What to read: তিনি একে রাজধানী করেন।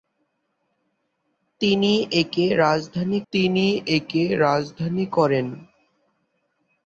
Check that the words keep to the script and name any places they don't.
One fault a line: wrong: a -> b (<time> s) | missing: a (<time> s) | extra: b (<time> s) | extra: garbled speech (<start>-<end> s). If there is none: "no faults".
extra: তিনি একে রাজধানী (3.3 s)